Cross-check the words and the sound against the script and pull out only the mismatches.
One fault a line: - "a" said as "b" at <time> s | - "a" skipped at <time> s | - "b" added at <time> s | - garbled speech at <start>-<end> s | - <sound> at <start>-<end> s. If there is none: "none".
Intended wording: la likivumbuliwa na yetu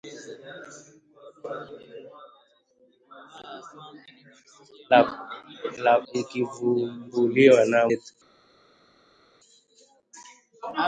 none